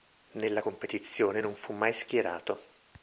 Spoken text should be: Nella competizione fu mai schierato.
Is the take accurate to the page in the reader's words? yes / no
no